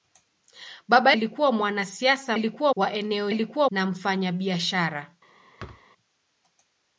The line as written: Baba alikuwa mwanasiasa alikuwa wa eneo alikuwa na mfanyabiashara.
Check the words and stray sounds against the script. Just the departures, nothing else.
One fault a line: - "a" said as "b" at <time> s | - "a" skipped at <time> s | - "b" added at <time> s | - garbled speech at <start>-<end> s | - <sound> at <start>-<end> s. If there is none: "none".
- thud at 5.6-5.9 s